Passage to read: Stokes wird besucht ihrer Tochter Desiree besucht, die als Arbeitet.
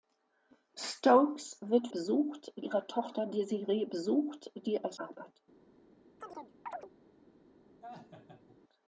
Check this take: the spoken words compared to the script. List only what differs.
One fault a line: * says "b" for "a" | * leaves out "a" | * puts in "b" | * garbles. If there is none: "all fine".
all fine